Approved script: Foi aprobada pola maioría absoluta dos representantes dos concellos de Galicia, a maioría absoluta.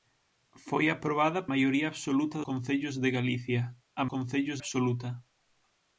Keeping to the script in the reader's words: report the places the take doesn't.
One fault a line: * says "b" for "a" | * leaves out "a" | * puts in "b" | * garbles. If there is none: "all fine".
* leaves out "pola"
* leaves out "dos representantes dos"
* says "concellos" for "maioría"